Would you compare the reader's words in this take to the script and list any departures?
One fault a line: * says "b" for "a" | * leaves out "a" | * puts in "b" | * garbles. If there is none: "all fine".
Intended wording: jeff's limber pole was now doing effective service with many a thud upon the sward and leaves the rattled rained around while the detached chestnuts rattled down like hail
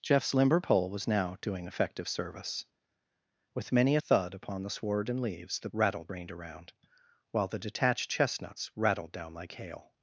all fine